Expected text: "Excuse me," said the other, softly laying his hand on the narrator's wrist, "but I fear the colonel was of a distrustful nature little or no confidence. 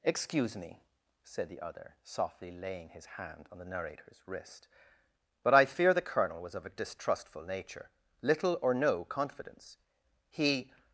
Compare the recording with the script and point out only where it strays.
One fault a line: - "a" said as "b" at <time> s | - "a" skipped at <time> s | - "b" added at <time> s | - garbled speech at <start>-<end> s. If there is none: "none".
- "He" added at 10.3 s